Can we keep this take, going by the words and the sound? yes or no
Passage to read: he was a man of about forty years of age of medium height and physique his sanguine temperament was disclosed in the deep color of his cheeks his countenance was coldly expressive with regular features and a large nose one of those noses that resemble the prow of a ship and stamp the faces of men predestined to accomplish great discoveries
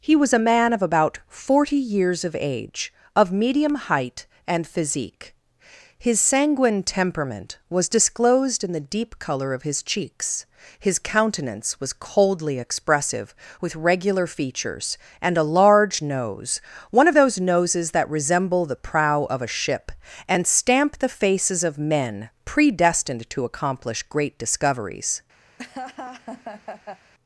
no